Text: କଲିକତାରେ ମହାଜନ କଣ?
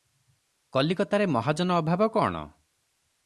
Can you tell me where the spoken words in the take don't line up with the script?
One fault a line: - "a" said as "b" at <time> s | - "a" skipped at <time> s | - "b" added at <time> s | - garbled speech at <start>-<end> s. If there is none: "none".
- "ଅଭାବ" added at 1.8 s